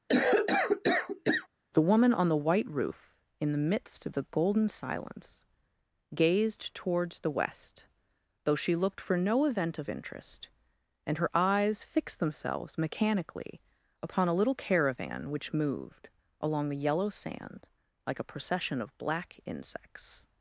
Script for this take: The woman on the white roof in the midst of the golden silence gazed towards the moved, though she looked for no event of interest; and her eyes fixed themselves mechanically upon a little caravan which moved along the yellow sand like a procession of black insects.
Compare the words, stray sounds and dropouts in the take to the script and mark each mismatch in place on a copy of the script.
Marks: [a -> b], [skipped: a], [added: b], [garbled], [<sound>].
[cough] The woman on the white roof in the midst of the golden silence gazed towards the [moved, -> west] though she looked for no event of interest; and her eyes fixed themselves mechanically upon a little caravan which moved along the yellow sand like a procession of black insects.